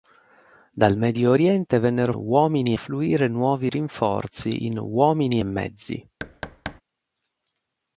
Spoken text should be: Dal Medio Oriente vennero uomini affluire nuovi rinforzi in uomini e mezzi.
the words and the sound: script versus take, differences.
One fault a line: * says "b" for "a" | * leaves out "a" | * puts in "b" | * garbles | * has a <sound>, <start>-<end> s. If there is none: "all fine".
* has a thud, 6.2-6.8 s